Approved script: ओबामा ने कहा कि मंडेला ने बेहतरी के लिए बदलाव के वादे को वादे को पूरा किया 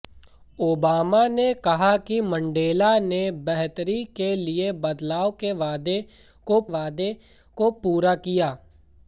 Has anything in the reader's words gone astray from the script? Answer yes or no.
no